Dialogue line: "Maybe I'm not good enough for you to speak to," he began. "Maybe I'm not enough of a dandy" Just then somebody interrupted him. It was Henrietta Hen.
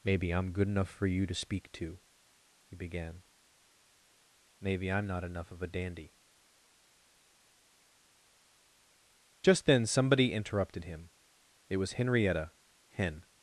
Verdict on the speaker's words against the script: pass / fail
fail